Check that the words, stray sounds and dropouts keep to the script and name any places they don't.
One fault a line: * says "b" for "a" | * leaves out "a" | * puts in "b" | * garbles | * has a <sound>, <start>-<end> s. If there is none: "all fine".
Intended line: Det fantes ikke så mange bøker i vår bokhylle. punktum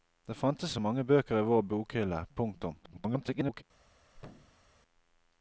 * leaves out "ikke"
* garbles
* has a thud, 4.1-4.7 s